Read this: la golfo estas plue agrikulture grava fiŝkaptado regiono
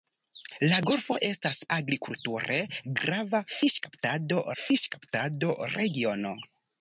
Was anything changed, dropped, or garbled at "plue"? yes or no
yes